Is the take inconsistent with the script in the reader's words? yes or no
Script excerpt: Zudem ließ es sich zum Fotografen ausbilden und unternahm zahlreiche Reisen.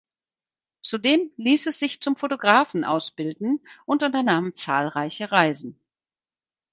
no